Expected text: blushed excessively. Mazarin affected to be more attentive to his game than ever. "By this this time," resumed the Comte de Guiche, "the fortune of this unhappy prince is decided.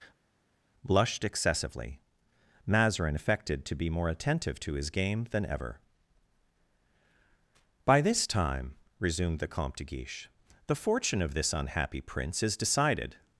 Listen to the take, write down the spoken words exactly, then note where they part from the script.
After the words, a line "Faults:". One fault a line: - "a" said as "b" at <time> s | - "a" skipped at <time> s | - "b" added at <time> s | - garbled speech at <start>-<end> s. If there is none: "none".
blushed excessively. Mazarin affected to be more attentive to his game than ever. "By this time," resumed the Comte de Guiche, "the fortune of this unhappy prince is decided.
Faults:
- "this" skipped at 8.3 s